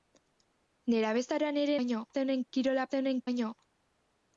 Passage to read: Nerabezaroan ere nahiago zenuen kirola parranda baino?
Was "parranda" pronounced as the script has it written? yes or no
no